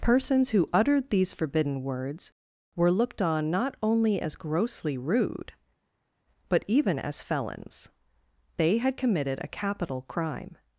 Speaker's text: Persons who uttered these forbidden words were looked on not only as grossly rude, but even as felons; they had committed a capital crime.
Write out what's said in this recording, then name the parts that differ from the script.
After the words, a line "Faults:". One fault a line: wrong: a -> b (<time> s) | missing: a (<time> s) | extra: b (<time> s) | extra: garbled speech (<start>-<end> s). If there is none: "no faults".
Persons who uttered these forbidden words were looked on not only as grossly rude, but even as felons; they had committed a capital crime.
Faults:
no faults